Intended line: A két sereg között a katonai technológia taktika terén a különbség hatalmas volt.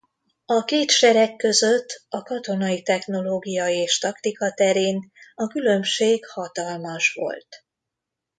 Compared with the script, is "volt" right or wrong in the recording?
right